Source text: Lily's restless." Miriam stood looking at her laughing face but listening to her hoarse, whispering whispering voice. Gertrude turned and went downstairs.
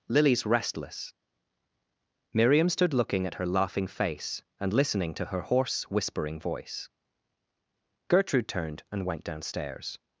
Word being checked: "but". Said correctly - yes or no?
no